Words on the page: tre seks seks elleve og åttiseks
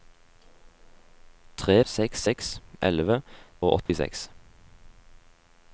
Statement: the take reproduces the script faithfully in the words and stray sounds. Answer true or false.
false